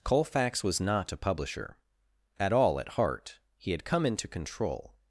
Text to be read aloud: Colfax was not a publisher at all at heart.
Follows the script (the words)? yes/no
no